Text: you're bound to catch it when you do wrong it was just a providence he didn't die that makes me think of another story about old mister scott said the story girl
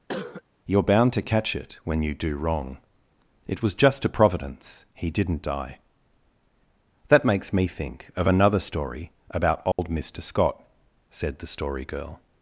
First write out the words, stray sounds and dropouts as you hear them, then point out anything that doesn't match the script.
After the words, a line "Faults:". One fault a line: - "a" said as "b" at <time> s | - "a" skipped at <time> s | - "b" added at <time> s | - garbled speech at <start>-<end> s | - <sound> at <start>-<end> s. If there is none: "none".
you're bound to catch it when you do wrong it was just a providence he didn't die that makes me think of another story about old mister scott said the story girl
Faults:
- cough at 0.1-0.4 s
- dropout at 9.7-9.8 s